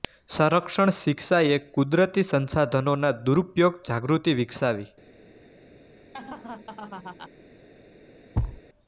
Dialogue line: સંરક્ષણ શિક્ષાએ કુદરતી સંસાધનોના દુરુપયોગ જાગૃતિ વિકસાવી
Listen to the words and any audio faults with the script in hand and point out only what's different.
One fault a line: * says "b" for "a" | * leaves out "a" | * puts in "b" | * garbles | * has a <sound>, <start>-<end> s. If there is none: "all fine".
* has a laugh, 6.1-7.3 s
* has a thud, 8.3-8.6 s